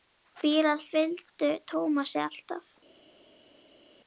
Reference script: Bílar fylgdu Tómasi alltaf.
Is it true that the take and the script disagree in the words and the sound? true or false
false